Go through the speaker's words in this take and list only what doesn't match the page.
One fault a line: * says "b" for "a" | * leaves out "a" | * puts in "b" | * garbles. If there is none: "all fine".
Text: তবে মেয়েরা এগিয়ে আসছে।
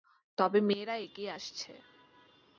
all fine